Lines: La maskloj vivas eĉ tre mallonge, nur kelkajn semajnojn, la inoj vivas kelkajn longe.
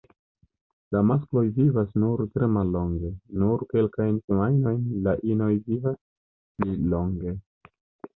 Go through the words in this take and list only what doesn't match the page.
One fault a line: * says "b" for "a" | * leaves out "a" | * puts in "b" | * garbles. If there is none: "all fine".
* says "nur" for "eĉ"
* says "pli" for "kelkajn"